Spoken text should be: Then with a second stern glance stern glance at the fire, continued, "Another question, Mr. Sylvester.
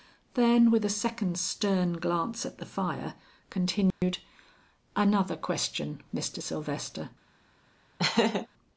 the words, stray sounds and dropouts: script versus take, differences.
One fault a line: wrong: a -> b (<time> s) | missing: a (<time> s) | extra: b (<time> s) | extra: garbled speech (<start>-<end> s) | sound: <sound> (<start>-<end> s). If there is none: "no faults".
missing: stern glance (2.4 s)
sound: dropout (3.9-4.0 s)
sound: laugh (8.0-8.5 s)